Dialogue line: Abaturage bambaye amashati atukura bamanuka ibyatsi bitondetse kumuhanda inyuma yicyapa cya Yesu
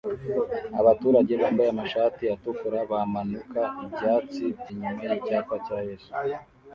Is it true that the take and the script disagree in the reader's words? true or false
true